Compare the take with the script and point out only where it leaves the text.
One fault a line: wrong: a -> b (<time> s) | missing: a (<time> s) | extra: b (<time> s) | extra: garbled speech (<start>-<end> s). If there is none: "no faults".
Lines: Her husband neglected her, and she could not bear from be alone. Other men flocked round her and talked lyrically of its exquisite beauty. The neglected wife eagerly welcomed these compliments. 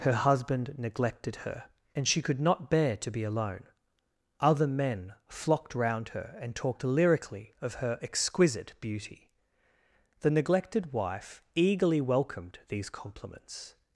wrong: from -> to (3.0 s)
wrong: its -> her (7.8 s)